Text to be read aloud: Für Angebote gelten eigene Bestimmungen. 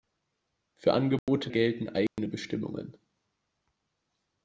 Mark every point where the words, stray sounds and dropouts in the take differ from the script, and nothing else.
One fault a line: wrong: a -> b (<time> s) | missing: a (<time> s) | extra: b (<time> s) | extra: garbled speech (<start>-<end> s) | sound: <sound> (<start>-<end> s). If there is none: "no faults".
sound: dropout (1.2-1.3 s)
sound: dropout (2.1-2.2 s)